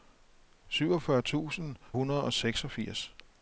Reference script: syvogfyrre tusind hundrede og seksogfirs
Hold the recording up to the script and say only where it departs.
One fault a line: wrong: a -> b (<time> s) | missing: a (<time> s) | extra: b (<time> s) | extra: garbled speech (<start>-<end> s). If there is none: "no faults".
no faults